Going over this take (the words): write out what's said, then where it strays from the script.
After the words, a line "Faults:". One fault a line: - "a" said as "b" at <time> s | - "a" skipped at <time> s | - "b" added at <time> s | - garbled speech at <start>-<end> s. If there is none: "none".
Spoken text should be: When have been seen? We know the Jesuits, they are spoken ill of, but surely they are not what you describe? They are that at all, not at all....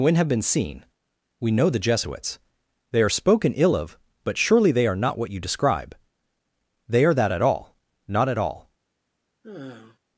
When have been seen? We know the Jesuits, they are spoken ill of, but surely they are not what you describe? They are that at all, not at all....
Faults:
none